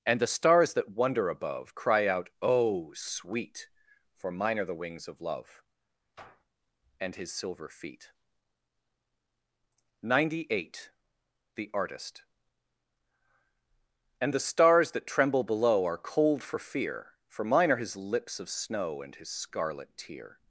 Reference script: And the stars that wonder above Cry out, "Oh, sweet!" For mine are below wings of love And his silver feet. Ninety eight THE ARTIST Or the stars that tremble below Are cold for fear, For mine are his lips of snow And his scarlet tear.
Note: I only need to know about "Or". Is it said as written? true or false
false